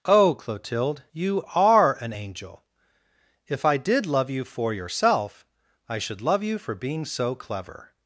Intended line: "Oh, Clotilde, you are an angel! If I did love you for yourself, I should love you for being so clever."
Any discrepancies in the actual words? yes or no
no